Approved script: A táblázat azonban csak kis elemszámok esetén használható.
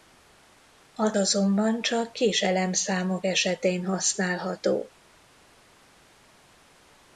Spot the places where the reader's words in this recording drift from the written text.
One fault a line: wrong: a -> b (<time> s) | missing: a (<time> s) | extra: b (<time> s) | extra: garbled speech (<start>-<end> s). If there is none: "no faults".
missing: táblázat (1.1 s)